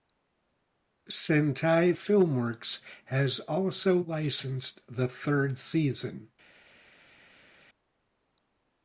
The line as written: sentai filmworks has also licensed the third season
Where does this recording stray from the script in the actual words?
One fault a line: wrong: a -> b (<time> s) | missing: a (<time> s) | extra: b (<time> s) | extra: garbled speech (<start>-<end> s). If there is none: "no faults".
no faults